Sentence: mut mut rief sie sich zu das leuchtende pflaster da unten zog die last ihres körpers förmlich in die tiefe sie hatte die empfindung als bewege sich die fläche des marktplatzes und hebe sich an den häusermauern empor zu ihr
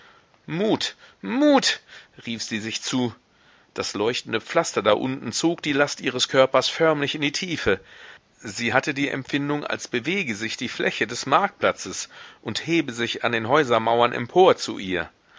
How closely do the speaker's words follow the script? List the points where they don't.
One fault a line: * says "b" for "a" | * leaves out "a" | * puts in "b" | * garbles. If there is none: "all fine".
all fine